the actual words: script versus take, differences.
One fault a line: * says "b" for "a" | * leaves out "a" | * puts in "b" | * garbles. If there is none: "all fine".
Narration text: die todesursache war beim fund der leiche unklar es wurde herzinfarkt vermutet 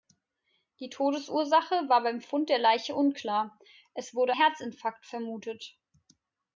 all fine